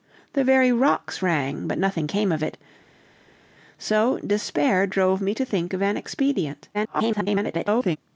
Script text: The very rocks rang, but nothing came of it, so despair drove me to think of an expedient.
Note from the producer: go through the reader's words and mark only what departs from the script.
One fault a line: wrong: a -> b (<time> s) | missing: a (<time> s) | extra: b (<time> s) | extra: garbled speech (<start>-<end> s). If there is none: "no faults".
extra: garbled speech (6.7-8.0 s)